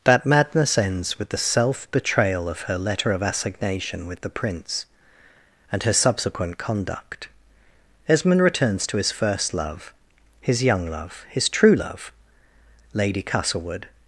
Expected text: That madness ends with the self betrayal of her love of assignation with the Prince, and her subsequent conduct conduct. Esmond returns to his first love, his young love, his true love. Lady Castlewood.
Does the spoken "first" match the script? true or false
true